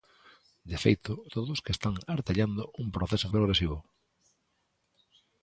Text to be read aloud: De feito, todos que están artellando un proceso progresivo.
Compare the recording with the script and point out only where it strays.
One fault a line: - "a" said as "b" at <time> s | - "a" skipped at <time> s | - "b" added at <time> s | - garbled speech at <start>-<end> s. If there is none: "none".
none